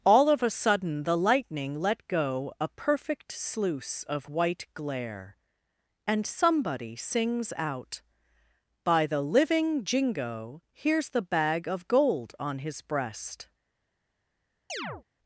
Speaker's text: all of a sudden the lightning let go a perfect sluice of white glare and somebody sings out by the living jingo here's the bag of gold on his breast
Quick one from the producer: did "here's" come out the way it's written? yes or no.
yes